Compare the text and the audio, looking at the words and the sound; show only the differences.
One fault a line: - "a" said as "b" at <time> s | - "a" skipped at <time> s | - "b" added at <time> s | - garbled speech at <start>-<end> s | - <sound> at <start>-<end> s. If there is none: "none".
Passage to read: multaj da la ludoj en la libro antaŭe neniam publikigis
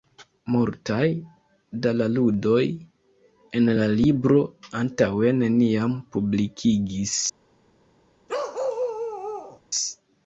- bark at 8.3-9.6 s